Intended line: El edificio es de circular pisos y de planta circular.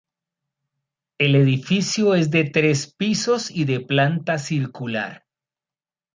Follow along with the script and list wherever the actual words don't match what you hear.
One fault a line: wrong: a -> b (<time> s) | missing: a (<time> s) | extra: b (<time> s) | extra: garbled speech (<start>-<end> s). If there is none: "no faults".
wrong: circular -> tres (2.5 s)